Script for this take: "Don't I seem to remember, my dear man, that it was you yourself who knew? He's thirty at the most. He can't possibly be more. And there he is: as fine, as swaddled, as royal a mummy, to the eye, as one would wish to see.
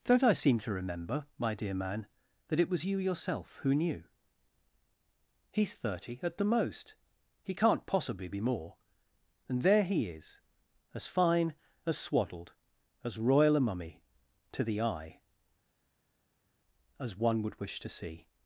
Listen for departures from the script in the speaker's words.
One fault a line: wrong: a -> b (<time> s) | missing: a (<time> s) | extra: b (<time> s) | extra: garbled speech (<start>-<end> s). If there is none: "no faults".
no faults